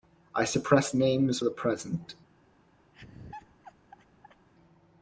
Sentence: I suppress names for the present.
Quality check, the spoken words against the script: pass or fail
fail